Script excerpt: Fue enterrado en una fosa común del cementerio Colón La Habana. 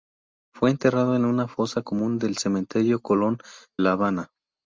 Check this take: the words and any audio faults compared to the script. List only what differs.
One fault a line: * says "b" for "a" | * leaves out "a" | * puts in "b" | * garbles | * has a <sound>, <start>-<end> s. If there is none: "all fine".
all fine